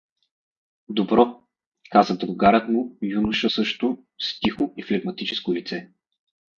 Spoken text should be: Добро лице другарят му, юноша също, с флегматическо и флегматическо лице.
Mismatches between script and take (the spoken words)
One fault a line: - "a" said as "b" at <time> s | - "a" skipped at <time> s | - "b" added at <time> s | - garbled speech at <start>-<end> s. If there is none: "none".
- "лице" said as "каза" at 1.9 s
- "флегматическо" said as "тихо" at 4.4 s